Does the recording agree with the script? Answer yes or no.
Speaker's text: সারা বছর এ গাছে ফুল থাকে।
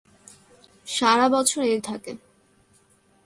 no